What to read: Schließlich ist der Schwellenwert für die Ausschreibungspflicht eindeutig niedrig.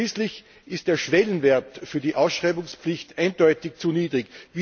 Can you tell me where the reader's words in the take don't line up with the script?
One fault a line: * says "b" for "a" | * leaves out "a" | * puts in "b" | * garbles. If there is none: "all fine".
* puts in "zu"